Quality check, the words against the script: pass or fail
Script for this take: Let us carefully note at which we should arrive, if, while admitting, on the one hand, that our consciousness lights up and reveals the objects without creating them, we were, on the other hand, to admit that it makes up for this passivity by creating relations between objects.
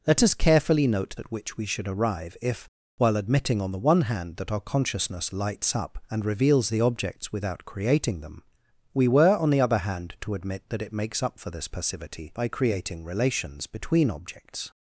pass